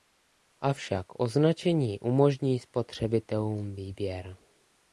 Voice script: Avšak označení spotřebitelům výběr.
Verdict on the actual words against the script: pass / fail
fail